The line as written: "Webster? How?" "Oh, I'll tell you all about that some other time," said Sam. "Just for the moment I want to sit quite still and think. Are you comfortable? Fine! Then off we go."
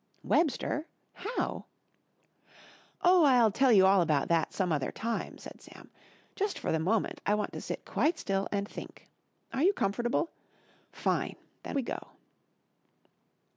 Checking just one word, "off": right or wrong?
wrong